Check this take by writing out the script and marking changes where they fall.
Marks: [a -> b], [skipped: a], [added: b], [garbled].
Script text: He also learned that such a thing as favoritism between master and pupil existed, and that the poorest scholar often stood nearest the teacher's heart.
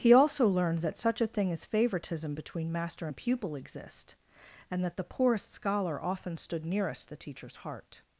He also learned that such a thing as favoritism between master and pupil [existed, -> exist] and that the poorest scholar often stood nearest the teacher's heart.